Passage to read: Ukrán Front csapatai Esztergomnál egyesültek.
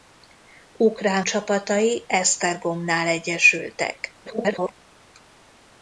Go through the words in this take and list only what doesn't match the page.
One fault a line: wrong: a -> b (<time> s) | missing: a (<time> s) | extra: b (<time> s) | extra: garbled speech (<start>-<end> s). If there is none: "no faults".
missing: Front (1.2 s)
extra: garbled speech (4.2-4.7 s)